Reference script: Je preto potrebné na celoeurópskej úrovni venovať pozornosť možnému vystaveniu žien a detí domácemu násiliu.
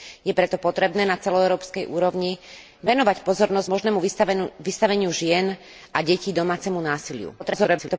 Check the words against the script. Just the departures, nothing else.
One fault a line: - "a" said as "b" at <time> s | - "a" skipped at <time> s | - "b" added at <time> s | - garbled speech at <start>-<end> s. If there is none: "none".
- garbled speech at 7.4-8.0 s